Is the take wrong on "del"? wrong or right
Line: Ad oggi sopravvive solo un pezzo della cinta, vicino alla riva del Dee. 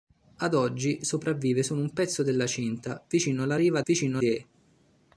wrong